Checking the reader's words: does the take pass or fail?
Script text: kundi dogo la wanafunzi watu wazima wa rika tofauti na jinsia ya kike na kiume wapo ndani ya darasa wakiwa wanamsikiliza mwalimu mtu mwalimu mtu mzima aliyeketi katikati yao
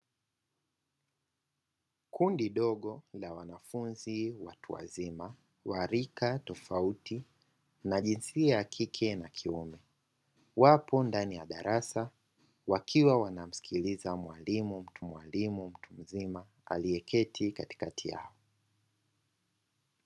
pass